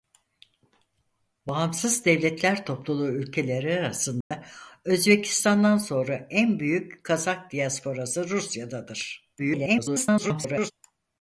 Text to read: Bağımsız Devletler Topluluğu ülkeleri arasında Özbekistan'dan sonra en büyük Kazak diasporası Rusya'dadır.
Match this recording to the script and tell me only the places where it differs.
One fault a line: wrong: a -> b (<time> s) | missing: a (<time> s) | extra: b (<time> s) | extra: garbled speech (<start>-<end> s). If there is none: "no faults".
extra: garbled speech (9.4-10.7 s)